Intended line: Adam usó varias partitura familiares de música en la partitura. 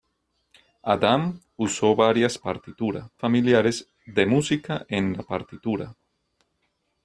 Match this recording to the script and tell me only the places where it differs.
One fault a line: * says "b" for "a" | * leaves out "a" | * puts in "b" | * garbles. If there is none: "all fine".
all fine